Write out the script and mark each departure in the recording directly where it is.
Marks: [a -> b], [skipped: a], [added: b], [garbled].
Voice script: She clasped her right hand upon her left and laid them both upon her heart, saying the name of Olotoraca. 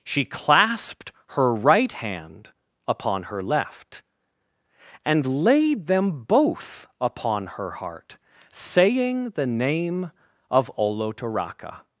She clasped her right hand upon her left and laid them both upon her heart, saying the name of Olotoraca.